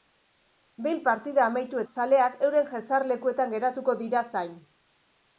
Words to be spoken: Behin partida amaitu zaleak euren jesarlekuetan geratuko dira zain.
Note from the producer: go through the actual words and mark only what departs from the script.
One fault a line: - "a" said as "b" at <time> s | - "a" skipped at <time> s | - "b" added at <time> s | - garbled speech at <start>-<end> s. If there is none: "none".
none